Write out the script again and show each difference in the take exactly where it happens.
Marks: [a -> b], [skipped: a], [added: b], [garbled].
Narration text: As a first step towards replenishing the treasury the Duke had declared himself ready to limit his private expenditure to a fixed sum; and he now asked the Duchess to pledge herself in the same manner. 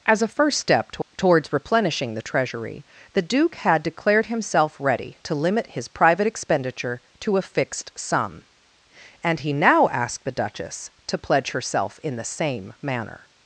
As a first step [added: to] towards replenishing the treasury the Duke had declared himself ready to limit his private expenditure to a fixed sum; and he now asked the Duchess to pledge herself in the same manner.